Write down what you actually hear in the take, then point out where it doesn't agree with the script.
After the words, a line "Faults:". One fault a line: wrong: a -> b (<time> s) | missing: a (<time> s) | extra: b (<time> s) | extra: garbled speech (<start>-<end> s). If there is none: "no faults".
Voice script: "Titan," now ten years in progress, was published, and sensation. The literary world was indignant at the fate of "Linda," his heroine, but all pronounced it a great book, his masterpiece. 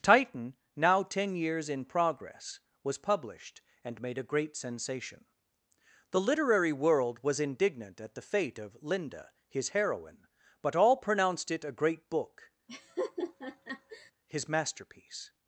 "Titan," now ten years in progress, was published, and made a great sensation. The literary world was indignant at the fate of "Linda," his heroine, but all pronounced it a great book, his masterpiece.
Faults:
extra: made a great (4.0 s)